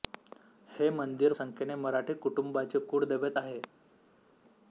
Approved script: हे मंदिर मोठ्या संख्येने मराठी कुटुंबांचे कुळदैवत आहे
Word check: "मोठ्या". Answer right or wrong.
wrong